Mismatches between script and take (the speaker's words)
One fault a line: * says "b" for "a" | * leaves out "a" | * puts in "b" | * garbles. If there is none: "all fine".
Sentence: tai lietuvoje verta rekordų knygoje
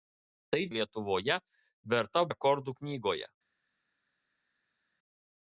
all fine